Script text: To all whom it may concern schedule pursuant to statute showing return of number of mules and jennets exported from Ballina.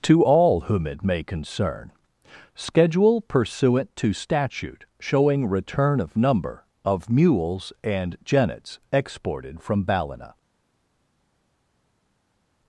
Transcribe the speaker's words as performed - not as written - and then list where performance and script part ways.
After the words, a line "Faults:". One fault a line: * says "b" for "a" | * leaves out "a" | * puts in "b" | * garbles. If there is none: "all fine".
To all whom it may concern schedule pursuant to statute showing return of number of mules and jennets exported from Ballina.
Faults:
all fine